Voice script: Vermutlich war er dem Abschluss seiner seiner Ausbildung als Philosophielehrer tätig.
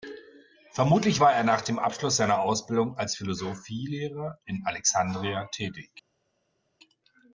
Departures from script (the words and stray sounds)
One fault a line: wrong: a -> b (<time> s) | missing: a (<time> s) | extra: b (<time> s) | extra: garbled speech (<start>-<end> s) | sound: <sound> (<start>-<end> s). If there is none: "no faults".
extra: nach (1.4 s)
missing: seiner (2.4 s)
extra: in Alexandria (4.5 s)